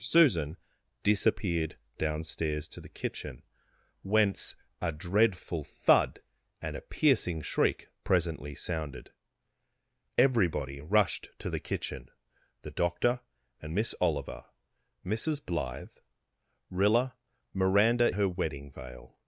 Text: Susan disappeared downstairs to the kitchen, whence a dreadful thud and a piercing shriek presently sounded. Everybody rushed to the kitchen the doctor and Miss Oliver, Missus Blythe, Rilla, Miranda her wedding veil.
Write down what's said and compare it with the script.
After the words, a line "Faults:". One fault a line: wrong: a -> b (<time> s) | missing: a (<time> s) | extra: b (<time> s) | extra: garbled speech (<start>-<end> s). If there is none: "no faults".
Susan disappeared downstairs to the kitchen, whence a dreadful thud and a piercing shriek presently sounded. Everybody rushed to the kitchen the doctor and Miss Oliver, Missus Blythe, Rilla, Miranda her wedding veil.
Faults:
no faults